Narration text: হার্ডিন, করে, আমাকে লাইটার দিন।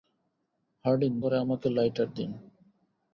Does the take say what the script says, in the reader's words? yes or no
yes